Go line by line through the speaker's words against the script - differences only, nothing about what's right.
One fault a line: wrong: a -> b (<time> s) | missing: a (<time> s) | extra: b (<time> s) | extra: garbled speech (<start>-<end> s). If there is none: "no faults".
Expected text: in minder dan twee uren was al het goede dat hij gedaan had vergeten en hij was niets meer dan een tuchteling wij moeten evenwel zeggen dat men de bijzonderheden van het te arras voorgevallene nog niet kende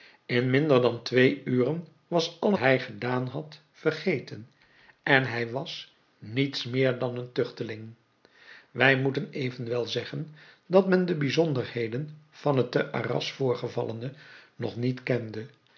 missing: het goede dat (2.5 s)